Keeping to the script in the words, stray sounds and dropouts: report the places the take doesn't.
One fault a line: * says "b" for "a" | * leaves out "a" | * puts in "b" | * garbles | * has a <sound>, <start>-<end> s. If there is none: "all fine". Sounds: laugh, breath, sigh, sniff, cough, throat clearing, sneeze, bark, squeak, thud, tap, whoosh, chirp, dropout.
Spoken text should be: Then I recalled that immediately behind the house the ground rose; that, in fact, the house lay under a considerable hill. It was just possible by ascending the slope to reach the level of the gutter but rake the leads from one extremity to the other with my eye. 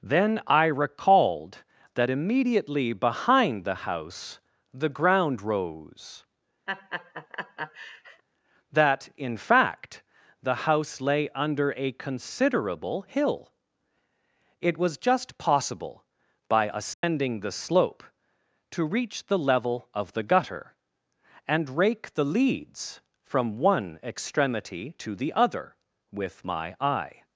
* has a laugh, 6.7-8.2 s
* has a dropout, 16.9-17.0 s
* says "and" for "but"